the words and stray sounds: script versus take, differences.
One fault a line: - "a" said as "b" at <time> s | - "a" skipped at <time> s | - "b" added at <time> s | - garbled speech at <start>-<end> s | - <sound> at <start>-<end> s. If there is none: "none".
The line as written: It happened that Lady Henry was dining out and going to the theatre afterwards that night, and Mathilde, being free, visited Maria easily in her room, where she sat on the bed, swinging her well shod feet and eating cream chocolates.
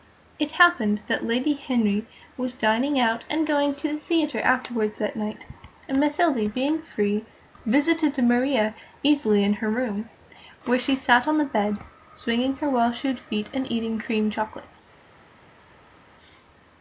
none